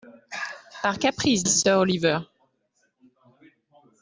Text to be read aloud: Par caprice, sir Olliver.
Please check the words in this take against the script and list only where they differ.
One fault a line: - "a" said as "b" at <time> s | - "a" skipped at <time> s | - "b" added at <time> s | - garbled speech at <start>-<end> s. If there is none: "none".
none